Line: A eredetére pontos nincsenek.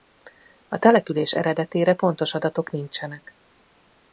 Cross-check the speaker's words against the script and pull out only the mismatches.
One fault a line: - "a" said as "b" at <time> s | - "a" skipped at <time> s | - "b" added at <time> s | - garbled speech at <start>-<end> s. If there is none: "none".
- "település" added at 0.8 s
- "adatok" added at 2.3 s